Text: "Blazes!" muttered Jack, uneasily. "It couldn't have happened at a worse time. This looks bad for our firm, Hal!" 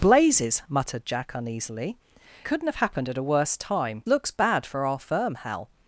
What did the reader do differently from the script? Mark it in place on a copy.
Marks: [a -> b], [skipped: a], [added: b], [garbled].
"Blazes!" muttered Jack, uneasily. [skipped: "It] couldn't have happened at a worse time. [skipped: This] looks bad for our firm, Hal!"